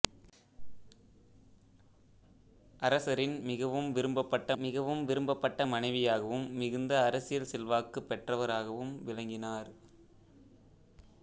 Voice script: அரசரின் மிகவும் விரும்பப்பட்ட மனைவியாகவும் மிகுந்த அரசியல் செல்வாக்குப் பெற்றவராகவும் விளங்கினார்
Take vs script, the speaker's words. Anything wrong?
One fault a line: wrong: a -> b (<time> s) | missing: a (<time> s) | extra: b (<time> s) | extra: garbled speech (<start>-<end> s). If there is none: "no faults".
extra: மிகவும் விரும்பப்பட்ட (4.6 s)